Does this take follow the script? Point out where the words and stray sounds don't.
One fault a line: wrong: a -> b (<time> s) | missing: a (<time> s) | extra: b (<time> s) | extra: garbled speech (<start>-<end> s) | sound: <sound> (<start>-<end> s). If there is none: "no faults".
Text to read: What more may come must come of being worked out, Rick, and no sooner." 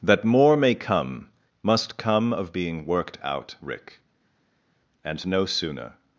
wrong: What -> That (0.0 s)